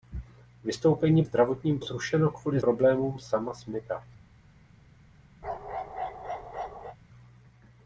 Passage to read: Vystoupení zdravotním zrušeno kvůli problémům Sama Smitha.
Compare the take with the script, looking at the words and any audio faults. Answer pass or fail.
fail